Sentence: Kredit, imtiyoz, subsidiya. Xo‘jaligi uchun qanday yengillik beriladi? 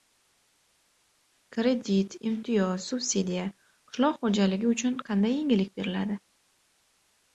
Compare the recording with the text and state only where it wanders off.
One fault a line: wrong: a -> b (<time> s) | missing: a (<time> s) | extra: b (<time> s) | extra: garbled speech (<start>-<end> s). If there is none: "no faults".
extra: Qishloq (3.9 s)